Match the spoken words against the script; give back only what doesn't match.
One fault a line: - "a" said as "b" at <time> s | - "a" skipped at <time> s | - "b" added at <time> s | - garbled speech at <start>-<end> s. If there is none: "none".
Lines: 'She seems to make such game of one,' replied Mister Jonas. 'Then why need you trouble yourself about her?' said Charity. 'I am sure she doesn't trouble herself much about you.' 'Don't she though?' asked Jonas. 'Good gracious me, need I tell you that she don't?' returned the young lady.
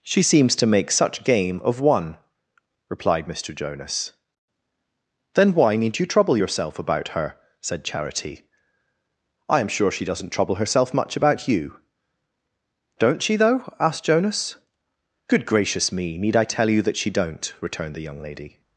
none